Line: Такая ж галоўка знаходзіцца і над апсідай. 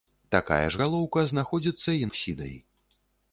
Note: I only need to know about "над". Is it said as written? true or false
false